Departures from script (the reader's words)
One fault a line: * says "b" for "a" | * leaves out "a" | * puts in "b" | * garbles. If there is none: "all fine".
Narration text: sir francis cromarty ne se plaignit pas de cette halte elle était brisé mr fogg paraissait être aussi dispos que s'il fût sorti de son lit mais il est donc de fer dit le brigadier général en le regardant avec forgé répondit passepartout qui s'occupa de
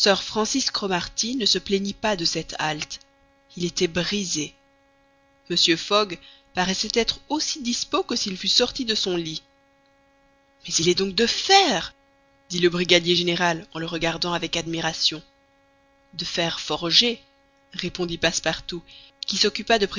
* says "il" for "elle"
* puts in "admiration de fer"